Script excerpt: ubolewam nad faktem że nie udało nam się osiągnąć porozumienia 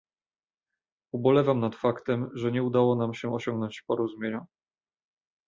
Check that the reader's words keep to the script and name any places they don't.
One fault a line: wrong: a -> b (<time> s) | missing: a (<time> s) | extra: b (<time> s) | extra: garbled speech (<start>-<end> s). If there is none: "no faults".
no faults